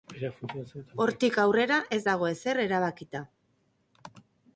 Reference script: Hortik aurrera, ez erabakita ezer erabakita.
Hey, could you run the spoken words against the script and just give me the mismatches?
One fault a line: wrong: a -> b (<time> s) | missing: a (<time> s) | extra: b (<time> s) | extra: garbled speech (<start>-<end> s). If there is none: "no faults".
wrong: erabakita -> dago (2.1 s)